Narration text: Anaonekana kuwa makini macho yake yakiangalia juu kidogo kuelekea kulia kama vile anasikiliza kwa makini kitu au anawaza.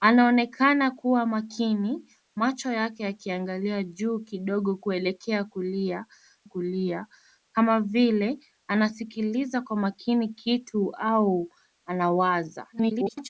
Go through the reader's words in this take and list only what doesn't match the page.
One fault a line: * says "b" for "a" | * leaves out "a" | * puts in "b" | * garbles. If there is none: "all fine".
* puts in "kulia"
* garbles